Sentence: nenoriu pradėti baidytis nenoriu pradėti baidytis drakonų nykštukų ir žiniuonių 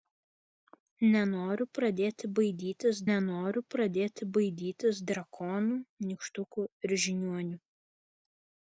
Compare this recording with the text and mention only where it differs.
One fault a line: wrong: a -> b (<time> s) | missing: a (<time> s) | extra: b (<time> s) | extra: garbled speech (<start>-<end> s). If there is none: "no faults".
no faults